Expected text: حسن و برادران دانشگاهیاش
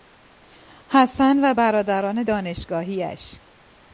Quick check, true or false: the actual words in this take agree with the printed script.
true